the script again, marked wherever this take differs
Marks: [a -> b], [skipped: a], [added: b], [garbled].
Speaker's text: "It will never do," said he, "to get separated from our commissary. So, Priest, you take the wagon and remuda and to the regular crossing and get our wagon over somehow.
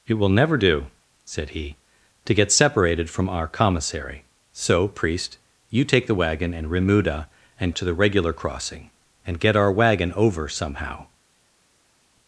"It will never do," said he, "to get separated from our commissary. So, Priest, you take the wagon and remuda and to the regular crossing and get our wagon over somehow.